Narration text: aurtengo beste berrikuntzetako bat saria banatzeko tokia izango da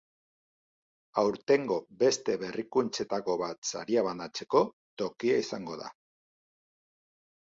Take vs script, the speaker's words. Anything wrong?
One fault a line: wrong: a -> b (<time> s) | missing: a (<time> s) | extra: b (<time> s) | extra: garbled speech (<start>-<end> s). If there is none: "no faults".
no faults